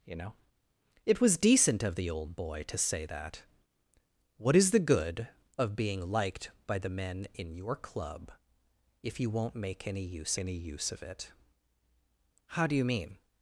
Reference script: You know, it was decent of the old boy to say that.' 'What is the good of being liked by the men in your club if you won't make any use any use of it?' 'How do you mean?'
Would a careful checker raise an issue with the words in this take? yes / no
no